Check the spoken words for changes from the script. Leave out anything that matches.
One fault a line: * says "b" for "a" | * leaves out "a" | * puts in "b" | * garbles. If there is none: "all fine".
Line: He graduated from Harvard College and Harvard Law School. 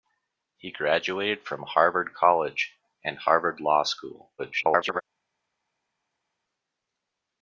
* garbles